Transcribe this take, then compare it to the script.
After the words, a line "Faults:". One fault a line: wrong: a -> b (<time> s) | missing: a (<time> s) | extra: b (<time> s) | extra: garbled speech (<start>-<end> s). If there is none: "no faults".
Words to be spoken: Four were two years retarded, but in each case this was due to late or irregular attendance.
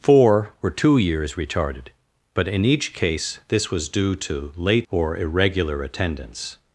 Four were two years retarded, but in each case this was due to late or irregular attendance.
Faults:
no faults